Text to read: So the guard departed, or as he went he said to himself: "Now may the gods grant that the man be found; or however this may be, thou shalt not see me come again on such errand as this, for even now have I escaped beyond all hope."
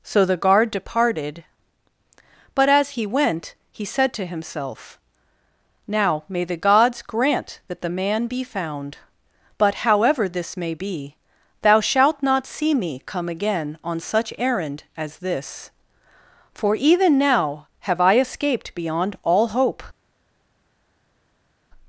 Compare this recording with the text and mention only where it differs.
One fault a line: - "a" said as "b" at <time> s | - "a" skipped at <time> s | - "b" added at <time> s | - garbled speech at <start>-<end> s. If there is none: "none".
- "or" said as "but" at 2.5 s
- "or" said as "but" at 9.6 s